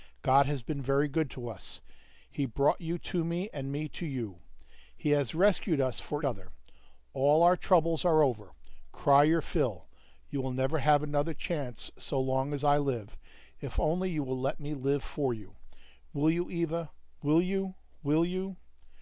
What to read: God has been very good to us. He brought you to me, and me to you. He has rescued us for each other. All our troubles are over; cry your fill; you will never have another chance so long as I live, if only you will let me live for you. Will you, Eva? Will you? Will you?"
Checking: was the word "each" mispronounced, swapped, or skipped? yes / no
yes